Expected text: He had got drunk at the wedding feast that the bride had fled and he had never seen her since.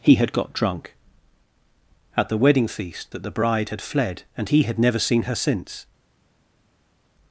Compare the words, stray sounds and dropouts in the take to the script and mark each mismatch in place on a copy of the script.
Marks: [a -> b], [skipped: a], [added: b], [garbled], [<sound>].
He had got drunk at the wedding feast that the bride had fled and he had never seen her since.